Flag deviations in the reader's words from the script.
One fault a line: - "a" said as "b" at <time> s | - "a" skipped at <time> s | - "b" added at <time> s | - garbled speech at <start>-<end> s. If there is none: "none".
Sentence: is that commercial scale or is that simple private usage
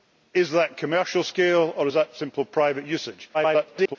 - garbled speech at 3.3-4.0 s